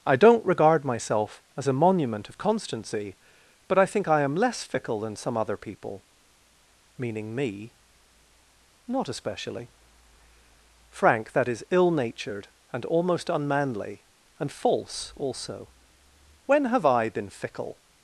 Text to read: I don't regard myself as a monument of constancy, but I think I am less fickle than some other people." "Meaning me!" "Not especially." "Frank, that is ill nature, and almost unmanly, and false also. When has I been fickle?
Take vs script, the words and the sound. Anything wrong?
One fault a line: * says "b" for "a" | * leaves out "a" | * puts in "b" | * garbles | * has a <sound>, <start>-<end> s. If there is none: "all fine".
* says "natured" for "nature"
* says "have" for "has"